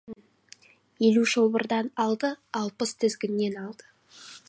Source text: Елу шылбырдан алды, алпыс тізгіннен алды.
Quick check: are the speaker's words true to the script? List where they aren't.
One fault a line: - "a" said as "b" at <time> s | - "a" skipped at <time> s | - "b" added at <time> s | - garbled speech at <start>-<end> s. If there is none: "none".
none